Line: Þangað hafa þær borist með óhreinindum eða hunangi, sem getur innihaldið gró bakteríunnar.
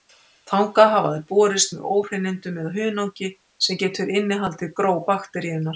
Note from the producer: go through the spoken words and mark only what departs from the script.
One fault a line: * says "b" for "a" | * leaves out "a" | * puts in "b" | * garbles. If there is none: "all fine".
all fine